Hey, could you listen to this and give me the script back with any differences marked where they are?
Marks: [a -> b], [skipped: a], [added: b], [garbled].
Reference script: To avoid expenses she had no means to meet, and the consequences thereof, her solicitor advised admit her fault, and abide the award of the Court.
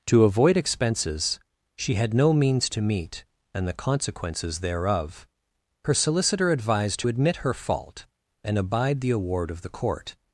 To avoid expenses she had no means to meet, and the consequences thereof, her solicitor advised admit her fault, and abide the award of the Court.